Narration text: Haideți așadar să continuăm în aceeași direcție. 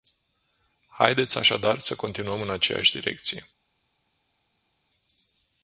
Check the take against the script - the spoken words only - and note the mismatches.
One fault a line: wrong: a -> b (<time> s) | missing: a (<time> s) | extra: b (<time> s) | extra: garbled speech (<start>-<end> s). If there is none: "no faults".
no faults